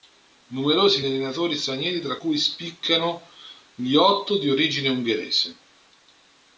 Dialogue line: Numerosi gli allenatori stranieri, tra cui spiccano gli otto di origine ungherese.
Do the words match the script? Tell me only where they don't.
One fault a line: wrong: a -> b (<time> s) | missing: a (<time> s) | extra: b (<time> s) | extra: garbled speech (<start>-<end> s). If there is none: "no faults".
no faults